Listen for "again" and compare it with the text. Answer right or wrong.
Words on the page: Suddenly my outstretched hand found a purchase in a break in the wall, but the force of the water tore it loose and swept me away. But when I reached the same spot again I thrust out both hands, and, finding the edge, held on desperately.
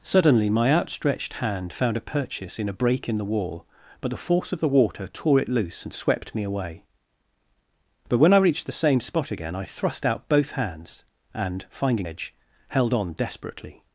right